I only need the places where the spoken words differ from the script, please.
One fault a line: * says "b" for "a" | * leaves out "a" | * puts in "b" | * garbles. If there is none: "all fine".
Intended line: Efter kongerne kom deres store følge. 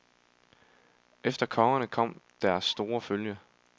all fine